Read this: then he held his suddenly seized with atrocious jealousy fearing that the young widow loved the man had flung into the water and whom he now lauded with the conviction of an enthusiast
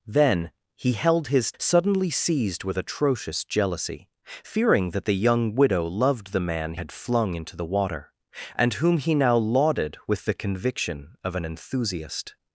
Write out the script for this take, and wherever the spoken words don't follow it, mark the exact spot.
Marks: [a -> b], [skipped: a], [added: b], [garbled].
then he held his suddenly seized with atrocious jealousy fearing that the young widow loved the man had flung into the water and whom he now lauded with the conviction of an enthusiast